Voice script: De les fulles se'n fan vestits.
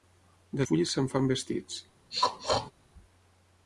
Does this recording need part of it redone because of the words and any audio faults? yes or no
yes